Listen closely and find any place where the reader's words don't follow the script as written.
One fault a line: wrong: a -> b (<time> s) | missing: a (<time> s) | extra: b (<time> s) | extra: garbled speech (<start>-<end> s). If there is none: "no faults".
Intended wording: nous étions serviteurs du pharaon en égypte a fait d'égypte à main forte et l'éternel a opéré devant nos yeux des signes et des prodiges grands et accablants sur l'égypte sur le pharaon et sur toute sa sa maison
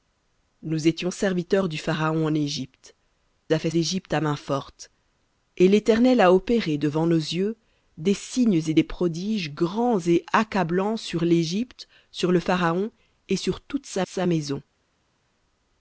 no faults